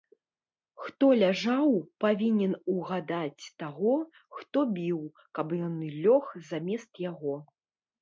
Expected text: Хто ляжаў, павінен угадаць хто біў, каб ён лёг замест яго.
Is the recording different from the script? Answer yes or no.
yes